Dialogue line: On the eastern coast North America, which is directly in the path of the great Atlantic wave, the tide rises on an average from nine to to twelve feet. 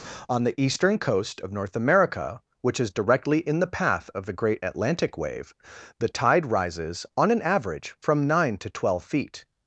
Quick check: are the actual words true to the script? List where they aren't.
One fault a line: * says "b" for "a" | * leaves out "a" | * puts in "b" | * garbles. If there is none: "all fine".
* puts in "of"
* leaves out "to"